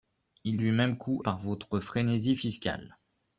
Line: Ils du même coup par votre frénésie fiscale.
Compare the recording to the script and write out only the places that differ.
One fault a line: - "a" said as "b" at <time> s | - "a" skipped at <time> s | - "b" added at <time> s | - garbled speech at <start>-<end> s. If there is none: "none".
none